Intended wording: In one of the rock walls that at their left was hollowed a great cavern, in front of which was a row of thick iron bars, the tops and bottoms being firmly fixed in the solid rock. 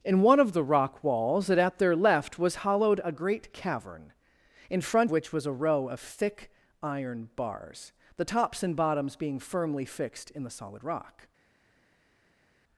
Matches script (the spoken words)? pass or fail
fail